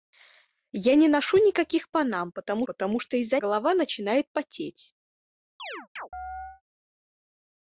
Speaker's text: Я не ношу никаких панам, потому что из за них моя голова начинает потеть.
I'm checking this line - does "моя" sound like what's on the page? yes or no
no